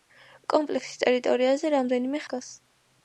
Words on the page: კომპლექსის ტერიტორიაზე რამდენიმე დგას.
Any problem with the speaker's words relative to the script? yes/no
no